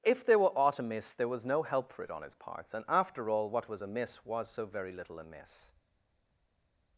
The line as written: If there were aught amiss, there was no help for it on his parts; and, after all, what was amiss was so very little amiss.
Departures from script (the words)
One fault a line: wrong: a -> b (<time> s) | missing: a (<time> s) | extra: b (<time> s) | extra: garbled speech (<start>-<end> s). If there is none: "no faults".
no faults